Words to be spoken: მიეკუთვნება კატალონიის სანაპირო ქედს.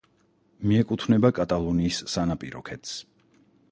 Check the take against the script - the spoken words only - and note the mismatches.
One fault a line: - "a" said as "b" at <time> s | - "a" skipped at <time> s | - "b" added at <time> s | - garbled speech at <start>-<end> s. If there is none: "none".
none